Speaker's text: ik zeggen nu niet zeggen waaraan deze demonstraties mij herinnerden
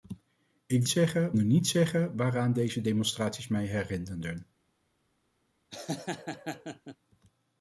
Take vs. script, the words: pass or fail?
pass